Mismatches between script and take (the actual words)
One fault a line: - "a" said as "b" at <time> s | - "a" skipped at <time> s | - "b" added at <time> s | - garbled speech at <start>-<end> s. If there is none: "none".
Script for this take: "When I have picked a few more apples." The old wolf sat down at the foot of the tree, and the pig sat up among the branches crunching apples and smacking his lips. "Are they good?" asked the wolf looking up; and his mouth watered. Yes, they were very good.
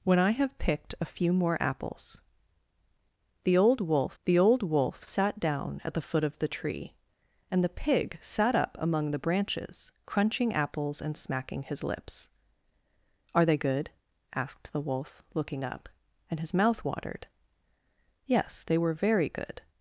- "the old wolf" added at 4.2 s